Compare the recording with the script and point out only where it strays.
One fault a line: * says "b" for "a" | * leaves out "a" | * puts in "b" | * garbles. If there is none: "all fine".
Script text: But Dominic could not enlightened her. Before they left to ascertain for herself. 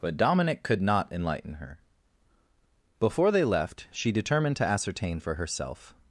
* says "enlighten" for "enlightened"
* puts in "she determined"